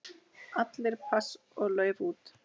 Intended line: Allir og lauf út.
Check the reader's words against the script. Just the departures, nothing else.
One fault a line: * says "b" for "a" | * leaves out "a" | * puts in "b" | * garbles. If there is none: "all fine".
* puts in "pass"